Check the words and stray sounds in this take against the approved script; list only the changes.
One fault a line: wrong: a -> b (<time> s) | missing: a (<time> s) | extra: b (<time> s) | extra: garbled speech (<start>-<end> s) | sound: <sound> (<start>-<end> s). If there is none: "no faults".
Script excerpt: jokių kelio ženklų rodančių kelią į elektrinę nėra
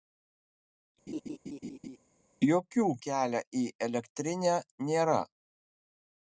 sound: laugh (1.1-2.0 s)
missing: kelio ženklų rodančių (2.9 s)